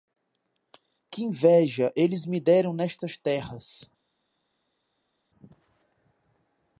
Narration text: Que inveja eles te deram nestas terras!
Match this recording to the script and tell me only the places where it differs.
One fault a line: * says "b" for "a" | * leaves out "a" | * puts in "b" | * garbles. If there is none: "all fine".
* says "me" for "te"